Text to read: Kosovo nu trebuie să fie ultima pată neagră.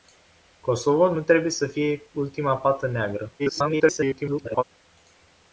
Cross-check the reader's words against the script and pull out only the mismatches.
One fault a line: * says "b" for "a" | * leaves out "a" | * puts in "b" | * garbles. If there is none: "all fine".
* garbles